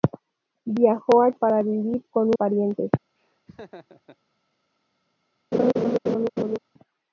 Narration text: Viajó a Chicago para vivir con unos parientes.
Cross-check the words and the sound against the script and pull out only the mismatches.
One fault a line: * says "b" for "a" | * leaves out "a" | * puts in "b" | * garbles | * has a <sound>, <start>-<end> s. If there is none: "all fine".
* leaves out "Chicago"
* leaves out "unos"
* has a laugh, 3.2-4.2 s
* has a laugh, 5.5-6.6 s